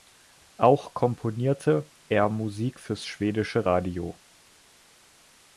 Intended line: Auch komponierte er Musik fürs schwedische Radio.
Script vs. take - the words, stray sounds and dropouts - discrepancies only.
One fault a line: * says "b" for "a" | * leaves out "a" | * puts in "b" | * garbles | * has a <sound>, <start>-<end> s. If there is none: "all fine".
all fine